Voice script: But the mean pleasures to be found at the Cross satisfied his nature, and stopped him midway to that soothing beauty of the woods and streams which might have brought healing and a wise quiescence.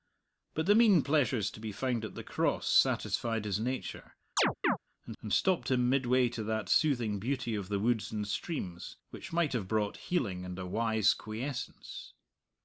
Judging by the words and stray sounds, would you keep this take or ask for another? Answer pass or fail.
fail